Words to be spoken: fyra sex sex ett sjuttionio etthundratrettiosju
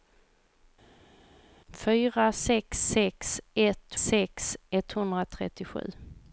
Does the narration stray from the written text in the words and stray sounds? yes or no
yes